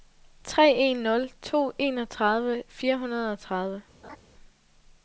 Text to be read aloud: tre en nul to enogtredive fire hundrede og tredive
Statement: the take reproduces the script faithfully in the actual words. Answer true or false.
true